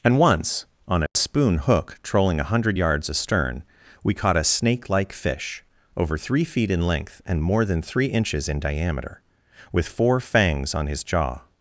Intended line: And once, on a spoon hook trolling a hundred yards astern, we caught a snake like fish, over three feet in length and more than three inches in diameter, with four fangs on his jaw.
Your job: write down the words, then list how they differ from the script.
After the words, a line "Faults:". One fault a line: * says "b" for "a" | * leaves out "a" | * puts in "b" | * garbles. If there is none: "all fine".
And once, on a spoon hook trolling a hundred yards astern, we caught a snake like fish, over three feet in length and more than three inches in diameter, with four fangs on his jaw.
Faults:
all fine